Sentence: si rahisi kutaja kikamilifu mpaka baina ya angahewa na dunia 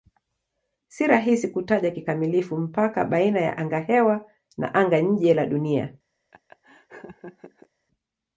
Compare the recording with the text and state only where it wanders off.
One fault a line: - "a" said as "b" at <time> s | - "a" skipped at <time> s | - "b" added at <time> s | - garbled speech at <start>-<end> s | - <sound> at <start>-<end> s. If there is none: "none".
- "anga nje la" added at 4.7 s
- laugh at 6.3-7.7 s